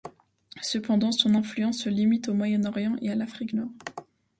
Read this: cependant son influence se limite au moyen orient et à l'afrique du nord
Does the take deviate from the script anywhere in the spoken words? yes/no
yes